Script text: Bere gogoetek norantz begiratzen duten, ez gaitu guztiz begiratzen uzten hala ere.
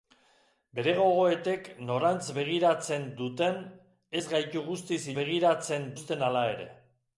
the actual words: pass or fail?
pass